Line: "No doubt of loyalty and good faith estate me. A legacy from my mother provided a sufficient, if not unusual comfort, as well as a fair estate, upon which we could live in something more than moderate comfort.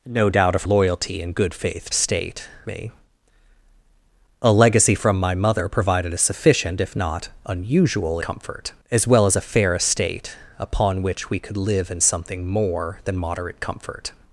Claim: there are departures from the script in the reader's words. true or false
false